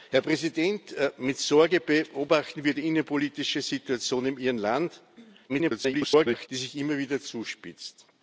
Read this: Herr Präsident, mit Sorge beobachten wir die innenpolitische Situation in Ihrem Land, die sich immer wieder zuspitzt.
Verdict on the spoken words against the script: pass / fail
fail